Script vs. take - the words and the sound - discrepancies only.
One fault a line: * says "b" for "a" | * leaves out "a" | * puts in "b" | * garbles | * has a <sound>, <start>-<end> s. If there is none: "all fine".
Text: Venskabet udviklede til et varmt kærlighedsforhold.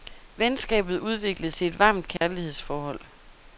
* has a dropout, 2.2-2.2 s